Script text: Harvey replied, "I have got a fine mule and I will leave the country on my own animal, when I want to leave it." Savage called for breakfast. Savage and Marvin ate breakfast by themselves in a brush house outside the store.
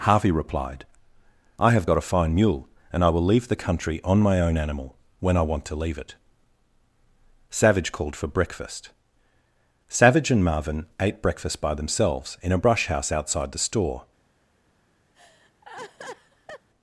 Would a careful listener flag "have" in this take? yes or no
no